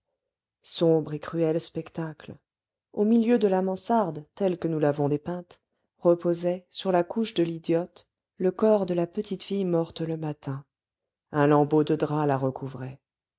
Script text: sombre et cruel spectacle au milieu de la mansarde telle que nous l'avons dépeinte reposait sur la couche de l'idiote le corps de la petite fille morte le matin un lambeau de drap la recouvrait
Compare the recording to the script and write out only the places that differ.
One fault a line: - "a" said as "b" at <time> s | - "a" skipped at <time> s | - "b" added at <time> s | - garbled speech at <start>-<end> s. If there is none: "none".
none